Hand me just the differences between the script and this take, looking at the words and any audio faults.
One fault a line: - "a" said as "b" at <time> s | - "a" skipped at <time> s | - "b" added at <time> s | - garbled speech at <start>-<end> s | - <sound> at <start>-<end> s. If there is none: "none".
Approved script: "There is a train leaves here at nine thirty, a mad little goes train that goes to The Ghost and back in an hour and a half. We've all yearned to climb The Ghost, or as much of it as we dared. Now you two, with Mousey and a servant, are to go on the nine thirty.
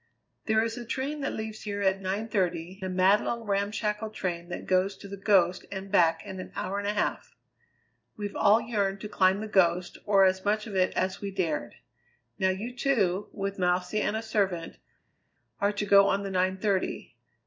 - "that" added at 1.2 s
- "goes" said as "ramshackle" at 3.4 s